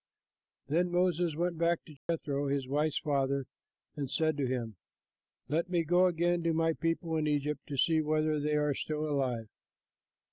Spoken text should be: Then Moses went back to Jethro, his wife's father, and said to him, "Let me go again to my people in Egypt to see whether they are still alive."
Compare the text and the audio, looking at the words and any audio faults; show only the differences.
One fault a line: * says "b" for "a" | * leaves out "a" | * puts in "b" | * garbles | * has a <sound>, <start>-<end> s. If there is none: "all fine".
* has a dropout, 2.0-2.1 s